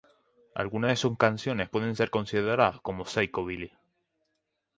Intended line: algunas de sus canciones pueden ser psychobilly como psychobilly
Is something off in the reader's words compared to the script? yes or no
yes